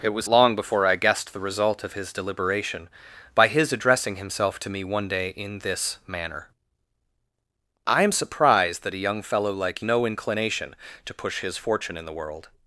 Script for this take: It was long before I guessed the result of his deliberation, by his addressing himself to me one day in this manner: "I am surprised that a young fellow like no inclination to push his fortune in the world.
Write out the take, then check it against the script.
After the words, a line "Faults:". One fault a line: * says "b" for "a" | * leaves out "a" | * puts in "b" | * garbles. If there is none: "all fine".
It was long before I guessed the result of his deliberation, by his addressing himself to me one day in this manner: "I am surprised that a young fellow like no inclination to push his fortune in the world.
Faults:
all fine